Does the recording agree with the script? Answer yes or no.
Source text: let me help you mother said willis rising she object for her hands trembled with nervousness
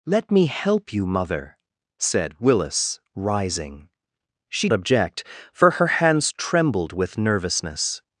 yes